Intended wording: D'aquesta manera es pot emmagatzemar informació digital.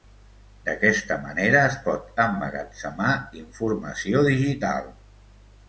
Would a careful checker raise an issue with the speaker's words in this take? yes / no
no